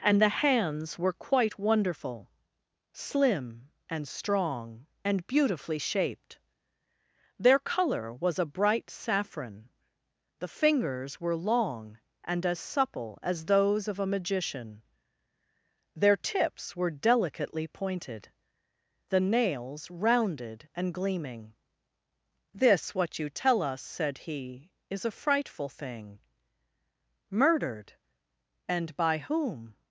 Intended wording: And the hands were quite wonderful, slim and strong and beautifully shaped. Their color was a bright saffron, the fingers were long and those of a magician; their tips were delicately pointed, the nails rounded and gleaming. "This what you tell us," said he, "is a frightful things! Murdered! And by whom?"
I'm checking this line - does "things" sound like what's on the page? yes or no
no